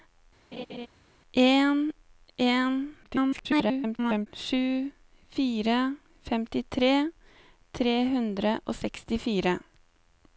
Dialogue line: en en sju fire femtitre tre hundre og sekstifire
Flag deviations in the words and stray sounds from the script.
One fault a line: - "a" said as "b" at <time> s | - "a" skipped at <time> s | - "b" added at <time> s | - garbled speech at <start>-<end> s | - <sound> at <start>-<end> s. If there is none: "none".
- laugh at 0.5-0.9 s
- garbled speech at 3.0-4.3 s